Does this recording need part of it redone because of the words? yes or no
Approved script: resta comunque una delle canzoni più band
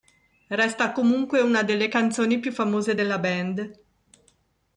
yes